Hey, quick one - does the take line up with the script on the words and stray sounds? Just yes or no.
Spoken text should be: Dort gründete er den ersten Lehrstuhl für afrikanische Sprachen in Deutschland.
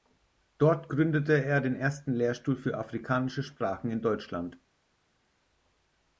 yes